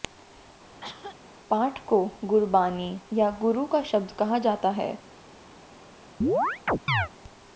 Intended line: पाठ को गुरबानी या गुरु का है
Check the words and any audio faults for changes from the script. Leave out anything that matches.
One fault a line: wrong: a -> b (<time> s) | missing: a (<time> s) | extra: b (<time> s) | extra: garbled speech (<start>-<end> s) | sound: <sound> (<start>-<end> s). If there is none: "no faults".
sound: cough (0.8-1.2 s)
extra: शब्द कहा जाता (3.8 s)
sound: chirp (6.2-7.1 s)